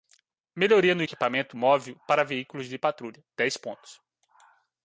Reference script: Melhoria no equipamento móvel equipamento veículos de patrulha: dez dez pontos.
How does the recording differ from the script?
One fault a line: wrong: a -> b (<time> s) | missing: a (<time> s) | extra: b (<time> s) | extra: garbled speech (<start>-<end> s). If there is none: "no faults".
wrong: equipamento -> para (2.1 s)
missing: dez (3.6 s)